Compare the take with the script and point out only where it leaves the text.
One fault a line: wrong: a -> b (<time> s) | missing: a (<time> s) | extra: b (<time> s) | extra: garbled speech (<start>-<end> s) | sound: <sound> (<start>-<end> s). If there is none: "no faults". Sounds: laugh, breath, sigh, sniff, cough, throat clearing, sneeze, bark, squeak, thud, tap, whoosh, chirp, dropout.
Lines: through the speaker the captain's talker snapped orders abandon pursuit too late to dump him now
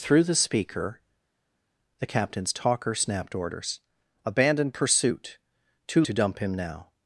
missing: late (6.0 s)